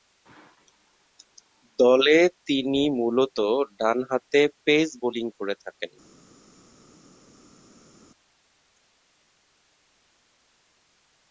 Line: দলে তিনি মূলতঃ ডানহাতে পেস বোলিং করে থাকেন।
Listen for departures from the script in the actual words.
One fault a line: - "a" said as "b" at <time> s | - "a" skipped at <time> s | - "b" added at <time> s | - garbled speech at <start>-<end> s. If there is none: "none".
none